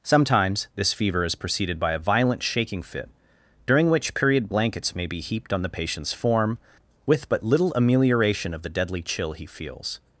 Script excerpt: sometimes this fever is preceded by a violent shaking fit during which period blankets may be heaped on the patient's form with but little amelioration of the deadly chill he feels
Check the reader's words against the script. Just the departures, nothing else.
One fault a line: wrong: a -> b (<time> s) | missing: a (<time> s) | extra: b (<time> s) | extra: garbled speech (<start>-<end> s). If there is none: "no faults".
no faults